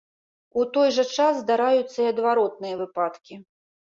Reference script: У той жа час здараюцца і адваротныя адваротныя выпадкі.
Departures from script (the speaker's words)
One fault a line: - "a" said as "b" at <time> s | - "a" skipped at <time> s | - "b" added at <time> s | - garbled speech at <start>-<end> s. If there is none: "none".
- "адваротныя" skipped at 2.8 s